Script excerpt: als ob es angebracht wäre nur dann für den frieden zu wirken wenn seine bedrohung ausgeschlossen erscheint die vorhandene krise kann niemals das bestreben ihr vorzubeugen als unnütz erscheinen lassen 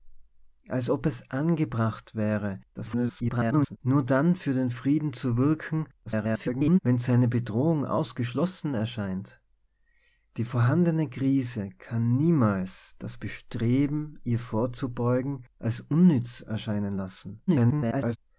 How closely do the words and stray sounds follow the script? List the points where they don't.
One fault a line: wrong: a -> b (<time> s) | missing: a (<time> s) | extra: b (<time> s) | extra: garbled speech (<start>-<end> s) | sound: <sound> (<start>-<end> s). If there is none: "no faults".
extra: garbled speech (2.7-3.8 s)
extra: garbled speech (6.1-6.8 s)
extra: garbled speech (17.5-18.2 s)